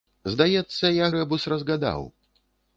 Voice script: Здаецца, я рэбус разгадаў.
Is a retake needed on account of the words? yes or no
no